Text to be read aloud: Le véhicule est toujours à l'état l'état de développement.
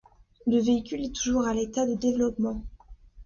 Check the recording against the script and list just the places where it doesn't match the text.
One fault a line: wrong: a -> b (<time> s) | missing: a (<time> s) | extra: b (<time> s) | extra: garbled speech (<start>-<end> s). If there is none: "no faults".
missing: l'état (1.9 s)